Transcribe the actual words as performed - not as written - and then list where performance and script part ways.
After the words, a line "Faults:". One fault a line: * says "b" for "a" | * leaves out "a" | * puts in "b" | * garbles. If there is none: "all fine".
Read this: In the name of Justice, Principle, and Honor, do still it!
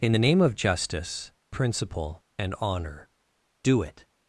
In the name of Justice, Principle, and Honor, do it!
Faults:
* leaves out "still"